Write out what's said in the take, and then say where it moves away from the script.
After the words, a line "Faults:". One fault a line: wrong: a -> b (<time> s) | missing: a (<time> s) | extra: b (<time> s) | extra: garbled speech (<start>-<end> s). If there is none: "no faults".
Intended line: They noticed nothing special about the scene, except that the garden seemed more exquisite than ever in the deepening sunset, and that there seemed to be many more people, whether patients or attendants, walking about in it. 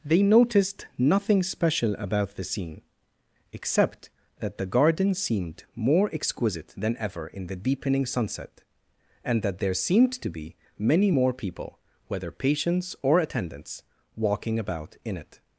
They noticed nothing special about the scene, except that the garden seemed more exquisite than ever in the deepening sunset, and that there seemed to be many more people, whether patients or attendants, walking about in it.
Faults:
no faults